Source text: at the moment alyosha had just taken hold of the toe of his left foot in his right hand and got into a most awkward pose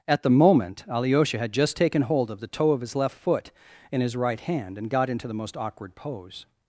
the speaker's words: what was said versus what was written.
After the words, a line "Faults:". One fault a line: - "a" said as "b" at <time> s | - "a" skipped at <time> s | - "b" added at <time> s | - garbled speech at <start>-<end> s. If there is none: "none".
at the moment alyosha had just taken hold of the toe of his left foot in his right hand and got into the most awkward pose
Faults:
- "a" said as "the" at 5.3 s